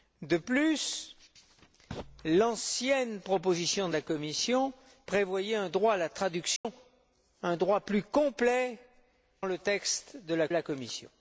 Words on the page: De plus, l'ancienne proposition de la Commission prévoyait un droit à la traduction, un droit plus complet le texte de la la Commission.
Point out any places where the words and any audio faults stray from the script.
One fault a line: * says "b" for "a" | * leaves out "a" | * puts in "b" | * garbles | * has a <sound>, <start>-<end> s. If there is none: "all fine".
* has a dropout, 6.6-6.6 s